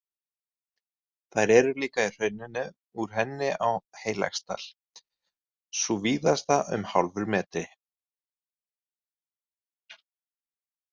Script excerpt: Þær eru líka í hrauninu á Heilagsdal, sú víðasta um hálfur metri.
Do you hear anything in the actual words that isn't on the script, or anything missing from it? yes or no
yes